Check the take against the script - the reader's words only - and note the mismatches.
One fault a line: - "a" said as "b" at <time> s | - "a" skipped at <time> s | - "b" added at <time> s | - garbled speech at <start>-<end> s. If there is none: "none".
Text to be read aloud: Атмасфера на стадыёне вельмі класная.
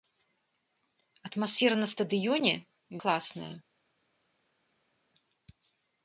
- "вельмі" skipped at 2.5 s